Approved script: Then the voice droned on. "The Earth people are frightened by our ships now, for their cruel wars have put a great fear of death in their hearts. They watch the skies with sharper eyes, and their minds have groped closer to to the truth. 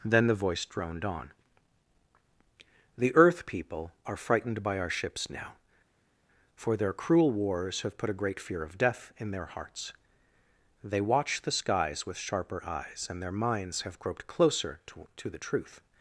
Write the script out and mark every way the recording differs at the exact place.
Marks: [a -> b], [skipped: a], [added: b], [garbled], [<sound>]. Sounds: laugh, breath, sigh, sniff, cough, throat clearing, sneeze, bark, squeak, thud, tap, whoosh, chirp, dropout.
Then the voice droned on. "The Earth people are frightened by our ships now, for their cruel wars have put a great fear of death in their hearts. They watch the skies with sharper eyes, and their minds have groped closer to to the truth.